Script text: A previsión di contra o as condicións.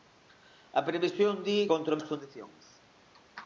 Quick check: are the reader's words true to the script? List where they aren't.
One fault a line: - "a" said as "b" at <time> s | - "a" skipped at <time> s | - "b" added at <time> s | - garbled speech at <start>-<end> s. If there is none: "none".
none